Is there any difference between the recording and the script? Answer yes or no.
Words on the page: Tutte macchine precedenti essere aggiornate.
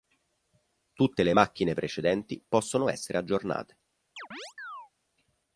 yes